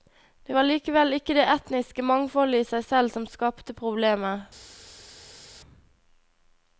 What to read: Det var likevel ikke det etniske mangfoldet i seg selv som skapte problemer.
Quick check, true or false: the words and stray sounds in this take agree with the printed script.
true